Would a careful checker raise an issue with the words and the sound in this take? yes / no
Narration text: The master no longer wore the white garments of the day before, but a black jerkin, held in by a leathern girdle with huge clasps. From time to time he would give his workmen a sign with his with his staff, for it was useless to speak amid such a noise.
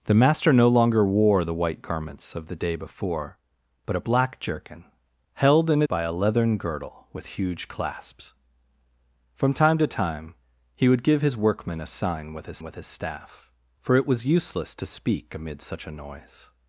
no